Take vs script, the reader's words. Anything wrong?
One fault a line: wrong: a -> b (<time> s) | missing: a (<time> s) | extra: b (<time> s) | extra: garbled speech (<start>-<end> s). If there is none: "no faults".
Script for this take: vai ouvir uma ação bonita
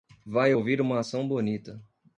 no faults